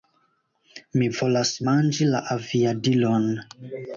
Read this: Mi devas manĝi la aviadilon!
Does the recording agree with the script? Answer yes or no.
no